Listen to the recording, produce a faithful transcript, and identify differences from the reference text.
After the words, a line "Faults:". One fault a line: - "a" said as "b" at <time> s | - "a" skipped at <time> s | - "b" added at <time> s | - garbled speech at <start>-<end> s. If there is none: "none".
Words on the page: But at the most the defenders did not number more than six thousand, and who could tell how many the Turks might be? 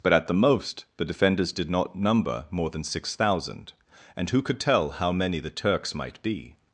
But at the most the defenders did not number more than six thousand, and who could tell how many the Turks might be?
Faults:
none